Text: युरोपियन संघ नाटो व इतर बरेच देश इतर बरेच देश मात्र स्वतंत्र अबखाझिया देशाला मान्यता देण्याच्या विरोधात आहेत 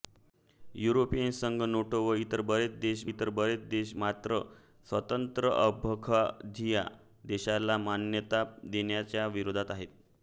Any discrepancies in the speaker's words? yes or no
no